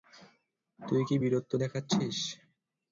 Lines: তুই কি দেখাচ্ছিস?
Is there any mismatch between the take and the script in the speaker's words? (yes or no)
yes